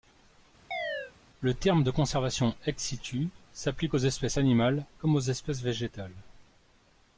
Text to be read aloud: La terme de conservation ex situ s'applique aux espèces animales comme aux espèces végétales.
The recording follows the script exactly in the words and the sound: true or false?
false